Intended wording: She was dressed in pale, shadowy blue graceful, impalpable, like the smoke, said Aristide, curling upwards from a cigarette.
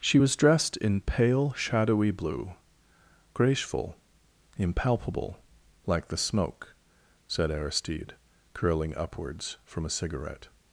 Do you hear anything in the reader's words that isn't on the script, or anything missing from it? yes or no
no